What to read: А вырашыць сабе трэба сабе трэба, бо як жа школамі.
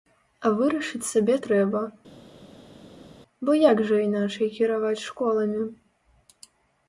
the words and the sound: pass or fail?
fail